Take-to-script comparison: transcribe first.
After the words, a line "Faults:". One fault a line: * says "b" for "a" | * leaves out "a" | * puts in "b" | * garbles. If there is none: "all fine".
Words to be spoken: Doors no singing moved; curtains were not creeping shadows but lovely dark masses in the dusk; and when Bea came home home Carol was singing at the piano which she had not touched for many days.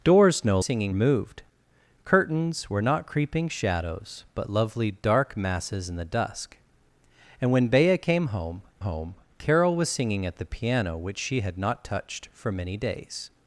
Doors no singing moved; curtains were not creeping shadows but lovely dark masses in the dusk; and when Bea came home home Carol was singing at the piano which she had not touched for many days.
Faults:
all fine